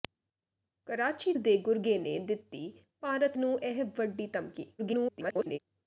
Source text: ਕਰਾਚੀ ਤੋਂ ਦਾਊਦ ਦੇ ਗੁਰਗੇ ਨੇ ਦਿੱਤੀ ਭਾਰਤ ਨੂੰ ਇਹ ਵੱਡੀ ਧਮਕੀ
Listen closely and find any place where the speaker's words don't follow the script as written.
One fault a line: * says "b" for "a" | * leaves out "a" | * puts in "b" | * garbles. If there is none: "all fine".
* leaves out "ਤੋਂ ਦਾਊਦ"
* garbles